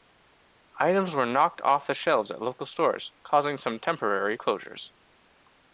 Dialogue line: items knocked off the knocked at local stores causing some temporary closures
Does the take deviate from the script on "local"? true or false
false